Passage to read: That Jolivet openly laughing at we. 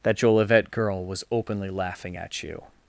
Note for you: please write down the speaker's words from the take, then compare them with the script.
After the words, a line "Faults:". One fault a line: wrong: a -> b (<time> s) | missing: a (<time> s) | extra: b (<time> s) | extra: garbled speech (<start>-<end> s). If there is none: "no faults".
That Jolivet girl was openly laughing at you.
Faults:
extra: girl was (0.7 s)
wrong: we -> you (2.4 s)